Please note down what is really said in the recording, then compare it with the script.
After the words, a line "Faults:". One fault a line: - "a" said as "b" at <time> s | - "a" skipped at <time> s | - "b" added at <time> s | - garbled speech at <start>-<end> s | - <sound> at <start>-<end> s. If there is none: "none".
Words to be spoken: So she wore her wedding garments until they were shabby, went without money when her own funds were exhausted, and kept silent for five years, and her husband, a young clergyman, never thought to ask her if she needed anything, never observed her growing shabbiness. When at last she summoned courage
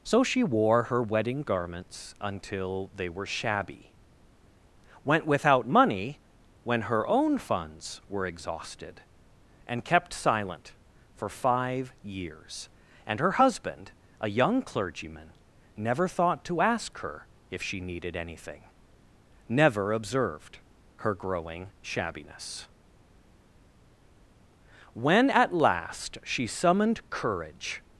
So she wore her wedding garments until they were shabby, went without money when her own funds were exhausted, and kept silent for five years, and her husband, a young clergyman, never thought to ask her if she needed anything, never observed her growing shabbiness. When at last she summoned courage
Faults:
none